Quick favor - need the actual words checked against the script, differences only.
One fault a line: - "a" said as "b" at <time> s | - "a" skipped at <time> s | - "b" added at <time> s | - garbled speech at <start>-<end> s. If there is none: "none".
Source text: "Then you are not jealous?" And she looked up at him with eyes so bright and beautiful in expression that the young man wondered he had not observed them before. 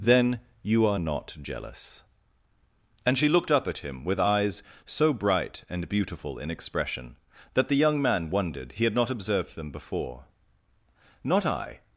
- "Not I" added at 11.2 s